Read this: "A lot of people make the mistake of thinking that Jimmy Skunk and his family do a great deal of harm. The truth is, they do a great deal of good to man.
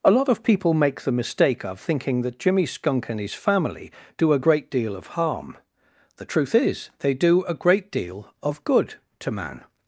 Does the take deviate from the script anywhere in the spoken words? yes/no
no